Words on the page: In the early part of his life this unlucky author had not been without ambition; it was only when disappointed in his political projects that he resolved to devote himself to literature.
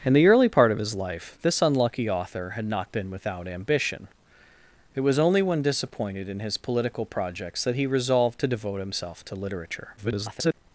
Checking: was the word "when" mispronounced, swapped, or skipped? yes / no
no